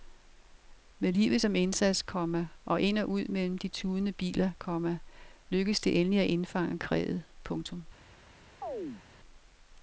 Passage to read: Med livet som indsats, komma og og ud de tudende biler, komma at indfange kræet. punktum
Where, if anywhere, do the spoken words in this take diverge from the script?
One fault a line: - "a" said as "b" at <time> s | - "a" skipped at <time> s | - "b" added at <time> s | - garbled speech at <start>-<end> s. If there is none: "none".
- "ind" added at 2.8 s
- "mellem" added at 3.2 s
- "lykkedes det endelig" added at 5.5 s